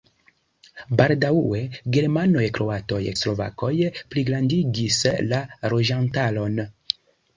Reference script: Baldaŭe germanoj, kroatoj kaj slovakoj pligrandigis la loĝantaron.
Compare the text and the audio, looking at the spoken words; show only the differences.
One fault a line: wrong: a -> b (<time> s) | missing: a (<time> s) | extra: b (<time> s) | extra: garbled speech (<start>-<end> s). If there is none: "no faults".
missing: kaj (3.0 s)